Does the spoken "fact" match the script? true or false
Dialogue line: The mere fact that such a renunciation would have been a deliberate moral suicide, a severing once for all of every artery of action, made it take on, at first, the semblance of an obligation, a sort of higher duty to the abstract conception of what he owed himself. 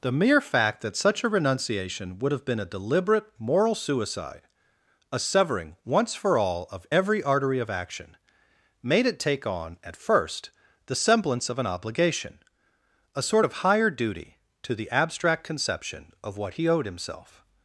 true